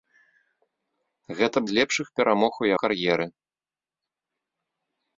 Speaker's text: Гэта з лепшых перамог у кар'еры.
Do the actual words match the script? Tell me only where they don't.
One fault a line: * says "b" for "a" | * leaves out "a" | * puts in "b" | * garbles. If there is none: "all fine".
all fine